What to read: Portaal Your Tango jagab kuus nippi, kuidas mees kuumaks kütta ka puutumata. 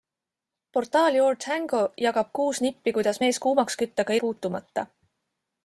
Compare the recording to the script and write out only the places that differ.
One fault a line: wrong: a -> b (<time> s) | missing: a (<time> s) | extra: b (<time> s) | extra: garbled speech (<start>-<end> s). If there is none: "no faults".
no faults